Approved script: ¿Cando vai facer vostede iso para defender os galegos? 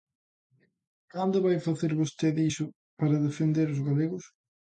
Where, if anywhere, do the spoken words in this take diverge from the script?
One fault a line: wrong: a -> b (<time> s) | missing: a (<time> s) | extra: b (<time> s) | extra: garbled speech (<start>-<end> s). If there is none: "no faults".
no faults